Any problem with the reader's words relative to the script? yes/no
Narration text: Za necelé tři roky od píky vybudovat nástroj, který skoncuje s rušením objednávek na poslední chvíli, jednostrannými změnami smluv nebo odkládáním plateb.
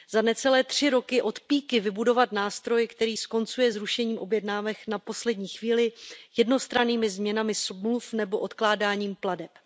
no